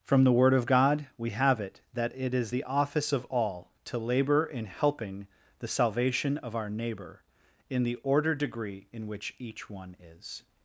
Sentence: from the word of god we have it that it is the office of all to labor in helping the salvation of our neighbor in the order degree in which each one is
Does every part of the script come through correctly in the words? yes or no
yes